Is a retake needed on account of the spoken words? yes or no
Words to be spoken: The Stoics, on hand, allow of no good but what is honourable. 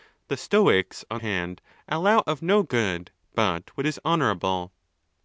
no